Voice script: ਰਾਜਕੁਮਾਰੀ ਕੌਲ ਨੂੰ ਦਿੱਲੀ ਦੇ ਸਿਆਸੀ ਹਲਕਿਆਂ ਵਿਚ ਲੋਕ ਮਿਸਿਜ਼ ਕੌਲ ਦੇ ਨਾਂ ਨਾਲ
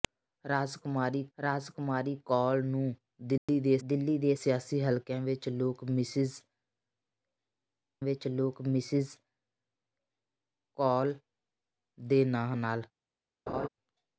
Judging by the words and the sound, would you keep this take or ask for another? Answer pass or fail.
fail